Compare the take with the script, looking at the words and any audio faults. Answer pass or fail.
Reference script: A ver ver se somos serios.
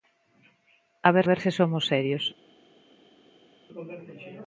pass